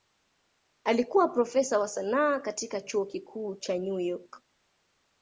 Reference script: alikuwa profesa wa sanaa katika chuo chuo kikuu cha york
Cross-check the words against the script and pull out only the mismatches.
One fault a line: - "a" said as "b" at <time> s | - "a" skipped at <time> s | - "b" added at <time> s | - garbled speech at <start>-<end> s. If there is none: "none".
- "chuo" skipped at 3.0 s
- "new" added at 3.8 s